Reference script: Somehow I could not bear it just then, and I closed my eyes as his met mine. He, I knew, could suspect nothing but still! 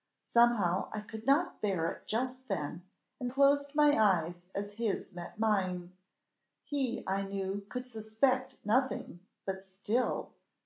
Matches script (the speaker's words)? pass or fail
fail